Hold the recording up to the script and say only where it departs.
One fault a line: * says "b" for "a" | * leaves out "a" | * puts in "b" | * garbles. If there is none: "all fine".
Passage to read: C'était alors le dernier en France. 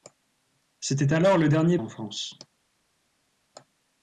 all fine